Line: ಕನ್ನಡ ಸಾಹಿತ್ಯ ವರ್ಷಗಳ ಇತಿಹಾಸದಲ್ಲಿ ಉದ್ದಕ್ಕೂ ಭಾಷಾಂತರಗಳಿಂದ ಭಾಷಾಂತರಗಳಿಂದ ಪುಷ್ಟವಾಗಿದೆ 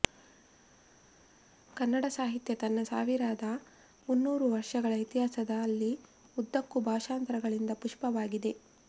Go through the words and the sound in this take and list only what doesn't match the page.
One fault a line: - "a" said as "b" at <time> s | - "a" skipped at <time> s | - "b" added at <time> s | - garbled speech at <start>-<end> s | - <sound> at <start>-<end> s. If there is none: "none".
- "ತನ್ನ ಸಾವಿರದ ಮುನ್ನೂರು" added at 2.5 s
- "ಭಾಷಾಂತರಗಳಿಂದ" skipped at 7.7 s